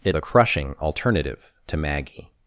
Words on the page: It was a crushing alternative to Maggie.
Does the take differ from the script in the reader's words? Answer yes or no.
yes